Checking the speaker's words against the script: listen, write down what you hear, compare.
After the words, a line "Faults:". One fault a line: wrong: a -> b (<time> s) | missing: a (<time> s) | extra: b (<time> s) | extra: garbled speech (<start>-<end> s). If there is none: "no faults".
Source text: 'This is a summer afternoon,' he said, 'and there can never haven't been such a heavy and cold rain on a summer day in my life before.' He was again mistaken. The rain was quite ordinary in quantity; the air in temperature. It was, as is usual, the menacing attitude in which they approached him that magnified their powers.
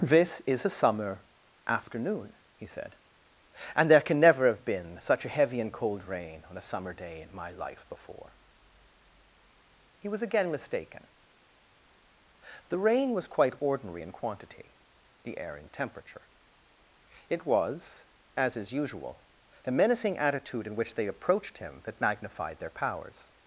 'This is a summer afternoon,' he said, 'and there can never have been such a heavy and cold rain on a summer day in my life before.' He was again mistaken. The rain was quite ordinary in quantity; the air in temperature. It was, as is usual, the menacing attitude in which they approached him that magnified their powers.
Faults:
wrong: haven't -> have (4.5 s)